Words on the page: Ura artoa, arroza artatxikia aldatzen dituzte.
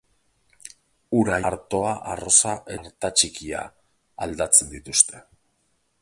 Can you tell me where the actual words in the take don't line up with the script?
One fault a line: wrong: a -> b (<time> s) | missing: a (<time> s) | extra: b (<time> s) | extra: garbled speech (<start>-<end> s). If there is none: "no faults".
no faults